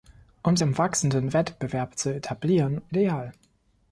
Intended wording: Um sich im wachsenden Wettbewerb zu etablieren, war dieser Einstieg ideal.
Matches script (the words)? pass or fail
fail